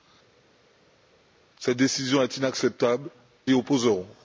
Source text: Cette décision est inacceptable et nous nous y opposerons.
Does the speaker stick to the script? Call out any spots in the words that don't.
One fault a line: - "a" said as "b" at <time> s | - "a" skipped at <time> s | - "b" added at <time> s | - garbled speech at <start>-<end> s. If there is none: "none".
- "et nous nous" skipped at 3.1 s